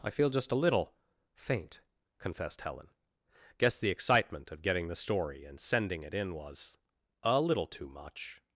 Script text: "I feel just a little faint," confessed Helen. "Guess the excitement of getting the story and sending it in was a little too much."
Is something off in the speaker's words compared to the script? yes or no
no